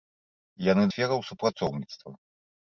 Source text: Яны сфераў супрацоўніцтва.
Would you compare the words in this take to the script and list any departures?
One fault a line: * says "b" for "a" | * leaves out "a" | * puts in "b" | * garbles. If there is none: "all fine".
all fine